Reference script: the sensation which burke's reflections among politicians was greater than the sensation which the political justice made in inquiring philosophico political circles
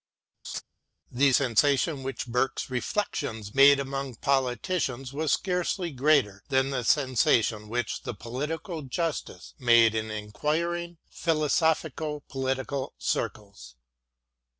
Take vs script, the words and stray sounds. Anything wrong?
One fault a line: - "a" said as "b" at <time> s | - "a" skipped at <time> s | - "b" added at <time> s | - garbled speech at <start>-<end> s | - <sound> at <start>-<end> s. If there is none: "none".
- laugh at 0.4-0.6 s
- "made" added at 3.5 s
- "scarcely" added at 5.3 s